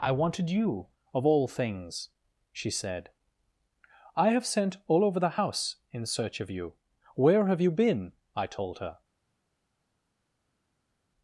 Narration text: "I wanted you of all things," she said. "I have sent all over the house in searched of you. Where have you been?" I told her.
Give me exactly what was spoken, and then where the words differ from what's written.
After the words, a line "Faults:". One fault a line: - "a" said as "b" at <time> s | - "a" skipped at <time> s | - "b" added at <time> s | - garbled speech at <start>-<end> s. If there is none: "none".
"I wanted you of all things," she said. "I have sent all over the house in search of you. Where have you been?" I told her.
Faults:
- "searched" said as "search" at 6.1 s